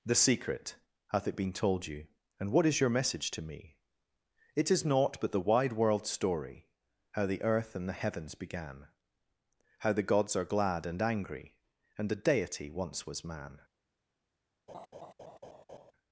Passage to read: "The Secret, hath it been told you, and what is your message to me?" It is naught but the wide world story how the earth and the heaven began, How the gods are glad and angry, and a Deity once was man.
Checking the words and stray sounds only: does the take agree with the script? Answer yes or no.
no